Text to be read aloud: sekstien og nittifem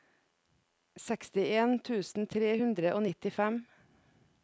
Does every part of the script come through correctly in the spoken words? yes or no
no